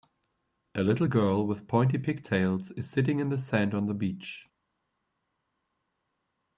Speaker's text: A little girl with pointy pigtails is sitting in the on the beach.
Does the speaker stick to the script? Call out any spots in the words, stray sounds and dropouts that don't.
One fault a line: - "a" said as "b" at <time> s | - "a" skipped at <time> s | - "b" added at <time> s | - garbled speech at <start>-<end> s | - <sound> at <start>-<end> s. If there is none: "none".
- "sand" added at 3.4 s